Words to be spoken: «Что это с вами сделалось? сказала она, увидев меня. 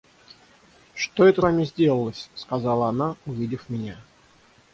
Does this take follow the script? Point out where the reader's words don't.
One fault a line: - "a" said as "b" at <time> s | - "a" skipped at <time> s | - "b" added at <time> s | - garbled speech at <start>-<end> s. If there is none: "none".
- "с" skipped at 1.4 s